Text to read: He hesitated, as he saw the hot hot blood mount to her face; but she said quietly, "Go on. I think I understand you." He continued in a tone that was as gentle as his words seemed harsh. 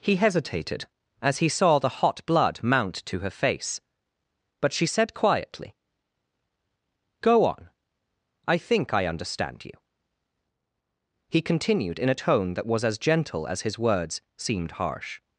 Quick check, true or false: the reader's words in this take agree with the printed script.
false